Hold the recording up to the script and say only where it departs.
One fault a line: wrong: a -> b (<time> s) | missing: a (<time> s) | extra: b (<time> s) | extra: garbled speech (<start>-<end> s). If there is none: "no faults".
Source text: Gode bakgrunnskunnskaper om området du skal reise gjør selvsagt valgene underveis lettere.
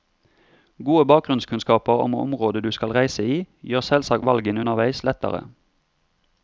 extra: i (3.3 s)